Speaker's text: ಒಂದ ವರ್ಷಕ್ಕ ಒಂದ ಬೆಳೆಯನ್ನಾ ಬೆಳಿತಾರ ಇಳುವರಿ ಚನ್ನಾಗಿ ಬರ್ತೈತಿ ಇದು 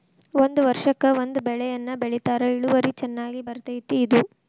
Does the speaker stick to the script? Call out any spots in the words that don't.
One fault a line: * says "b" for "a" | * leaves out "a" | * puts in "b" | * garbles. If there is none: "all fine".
all fine